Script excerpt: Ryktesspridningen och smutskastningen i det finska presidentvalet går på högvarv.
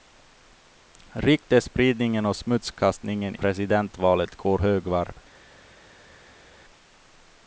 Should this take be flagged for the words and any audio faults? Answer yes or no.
yes